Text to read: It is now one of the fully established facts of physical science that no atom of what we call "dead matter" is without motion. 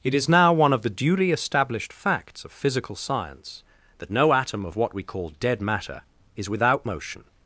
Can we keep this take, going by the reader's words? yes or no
no